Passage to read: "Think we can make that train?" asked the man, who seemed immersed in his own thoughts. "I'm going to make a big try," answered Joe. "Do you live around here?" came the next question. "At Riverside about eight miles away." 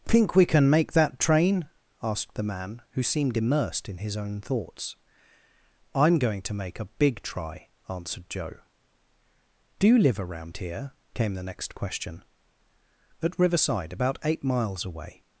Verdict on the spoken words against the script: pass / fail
pass